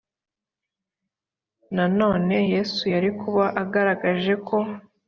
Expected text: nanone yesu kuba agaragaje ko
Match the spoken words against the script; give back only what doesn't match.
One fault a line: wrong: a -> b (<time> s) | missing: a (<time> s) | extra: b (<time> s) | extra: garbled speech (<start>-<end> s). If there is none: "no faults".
extra: yari (2.9 s)